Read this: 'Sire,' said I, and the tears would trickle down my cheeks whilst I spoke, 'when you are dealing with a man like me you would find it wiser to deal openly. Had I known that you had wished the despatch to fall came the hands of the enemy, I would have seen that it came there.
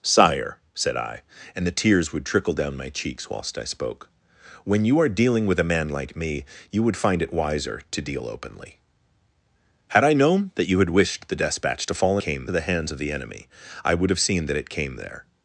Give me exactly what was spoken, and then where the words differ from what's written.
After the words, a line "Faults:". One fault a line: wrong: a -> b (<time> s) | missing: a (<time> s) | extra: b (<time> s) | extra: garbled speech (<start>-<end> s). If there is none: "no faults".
'Sire,' said I, and the tears would trickle down my cheeks whilst I spoke, 'when you are dealing with a man like me you would find it wiser to deal openly. Had I known that you had wished the despatch to fall came the hands of the enemy, I would have seen that it came there.
Faults:
no faults